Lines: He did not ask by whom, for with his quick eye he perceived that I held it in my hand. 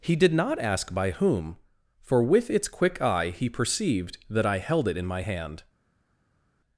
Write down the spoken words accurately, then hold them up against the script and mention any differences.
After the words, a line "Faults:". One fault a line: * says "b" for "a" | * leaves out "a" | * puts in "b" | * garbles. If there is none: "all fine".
He did not ask by whom, for with its quick eye he perceived that I held it in my hand.
Faults:
* says "its" for "his"